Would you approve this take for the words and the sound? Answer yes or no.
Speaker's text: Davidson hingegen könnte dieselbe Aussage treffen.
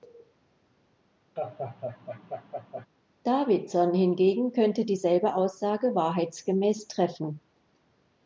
no